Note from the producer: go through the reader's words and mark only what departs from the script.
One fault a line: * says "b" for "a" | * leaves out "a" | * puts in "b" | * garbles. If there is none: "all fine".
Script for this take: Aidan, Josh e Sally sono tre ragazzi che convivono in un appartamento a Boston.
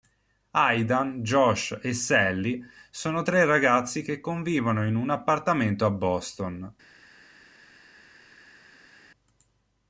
all fine